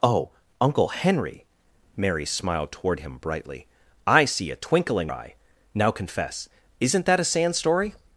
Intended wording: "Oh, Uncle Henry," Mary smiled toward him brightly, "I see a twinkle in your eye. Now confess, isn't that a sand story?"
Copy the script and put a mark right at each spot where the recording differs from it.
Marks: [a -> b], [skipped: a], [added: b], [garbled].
"Oh, Uncle Henry," Mary smiled toward him brightly, "I see a twinkle in [skipped: your] eye. Now confess, isn't that a sand story?"